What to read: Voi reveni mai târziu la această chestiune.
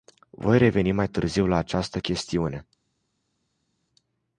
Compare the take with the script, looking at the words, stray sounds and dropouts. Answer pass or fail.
pass